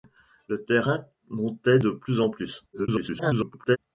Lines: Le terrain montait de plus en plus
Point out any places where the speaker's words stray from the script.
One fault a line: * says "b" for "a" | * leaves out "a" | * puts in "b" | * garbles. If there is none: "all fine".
* garbles